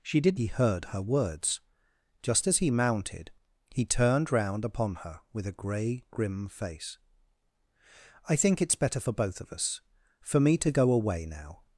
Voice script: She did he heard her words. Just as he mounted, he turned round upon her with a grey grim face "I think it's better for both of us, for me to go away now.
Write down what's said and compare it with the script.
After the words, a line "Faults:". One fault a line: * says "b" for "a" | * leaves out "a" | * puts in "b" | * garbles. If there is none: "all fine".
She did he heard her words. Just as he mounted, he turned round upon her with a grey grim face "I think it's better for both of us, for me to go away now.
Faults:
all fine